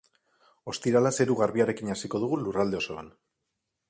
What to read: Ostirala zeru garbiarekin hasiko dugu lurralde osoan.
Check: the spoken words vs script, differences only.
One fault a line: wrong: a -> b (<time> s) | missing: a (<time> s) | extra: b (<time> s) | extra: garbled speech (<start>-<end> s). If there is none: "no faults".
no faults